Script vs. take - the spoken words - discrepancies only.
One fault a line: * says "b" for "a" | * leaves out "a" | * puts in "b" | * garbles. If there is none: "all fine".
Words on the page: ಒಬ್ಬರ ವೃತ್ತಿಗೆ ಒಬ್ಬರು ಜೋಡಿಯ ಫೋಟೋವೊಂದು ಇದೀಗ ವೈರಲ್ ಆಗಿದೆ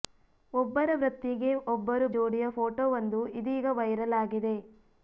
all fine